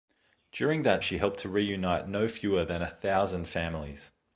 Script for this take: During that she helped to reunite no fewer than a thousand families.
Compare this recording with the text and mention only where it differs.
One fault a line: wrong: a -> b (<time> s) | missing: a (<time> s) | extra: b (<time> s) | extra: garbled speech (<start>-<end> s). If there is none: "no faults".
no faults